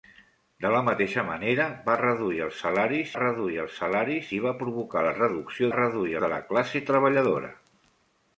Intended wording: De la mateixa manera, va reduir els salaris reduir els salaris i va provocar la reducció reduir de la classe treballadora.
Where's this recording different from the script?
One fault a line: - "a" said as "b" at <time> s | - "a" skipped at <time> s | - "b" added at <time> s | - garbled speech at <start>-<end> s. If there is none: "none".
none